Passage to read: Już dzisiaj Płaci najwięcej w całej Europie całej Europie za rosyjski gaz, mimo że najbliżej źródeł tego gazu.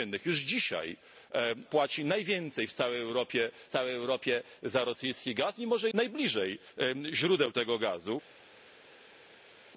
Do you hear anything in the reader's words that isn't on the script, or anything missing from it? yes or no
no